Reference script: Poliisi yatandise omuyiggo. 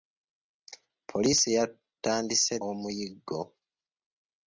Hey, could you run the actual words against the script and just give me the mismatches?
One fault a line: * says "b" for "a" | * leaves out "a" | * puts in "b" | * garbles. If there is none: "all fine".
all fine